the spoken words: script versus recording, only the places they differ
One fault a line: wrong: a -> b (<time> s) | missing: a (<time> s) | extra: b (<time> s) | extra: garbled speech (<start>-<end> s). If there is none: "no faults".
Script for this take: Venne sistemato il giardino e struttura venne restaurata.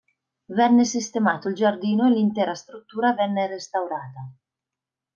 extra: l'intera (2.1 s)